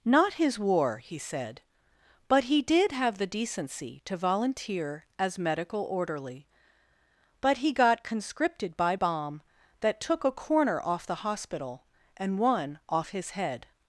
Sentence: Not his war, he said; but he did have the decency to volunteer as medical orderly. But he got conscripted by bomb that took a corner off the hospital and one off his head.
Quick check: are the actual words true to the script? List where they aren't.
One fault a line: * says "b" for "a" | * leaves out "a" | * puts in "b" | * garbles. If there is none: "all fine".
all fine